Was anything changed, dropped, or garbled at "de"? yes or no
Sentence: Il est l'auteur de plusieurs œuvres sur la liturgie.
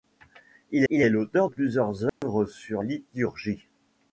yes